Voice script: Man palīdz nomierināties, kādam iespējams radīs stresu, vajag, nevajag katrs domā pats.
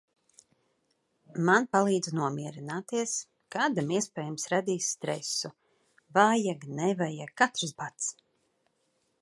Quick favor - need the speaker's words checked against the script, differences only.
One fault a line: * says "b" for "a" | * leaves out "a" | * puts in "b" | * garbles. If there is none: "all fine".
* leaves out "domā"